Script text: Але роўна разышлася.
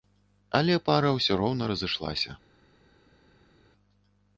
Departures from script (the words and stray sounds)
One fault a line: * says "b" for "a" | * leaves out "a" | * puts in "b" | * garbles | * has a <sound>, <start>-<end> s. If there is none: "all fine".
* puts in "пара ўсё"